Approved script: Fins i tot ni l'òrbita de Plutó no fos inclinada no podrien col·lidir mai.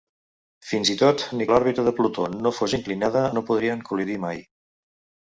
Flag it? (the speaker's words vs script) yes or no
no